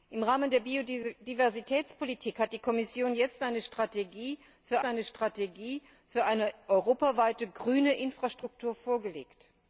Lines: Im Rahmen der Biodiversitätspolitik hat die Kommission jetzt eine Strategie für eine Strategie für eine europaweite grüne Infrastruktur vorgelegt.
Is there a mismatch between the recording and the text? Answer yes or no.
no